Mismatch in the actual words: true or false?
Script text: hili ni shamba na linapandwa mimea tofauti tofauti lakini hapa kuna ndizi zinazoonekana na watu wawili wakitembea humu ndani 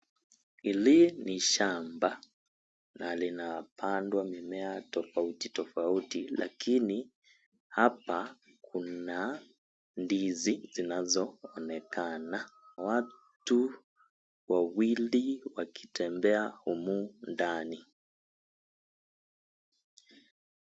true